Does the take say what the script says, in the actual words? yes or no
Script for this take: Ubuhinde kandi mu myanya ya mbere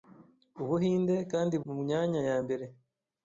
yes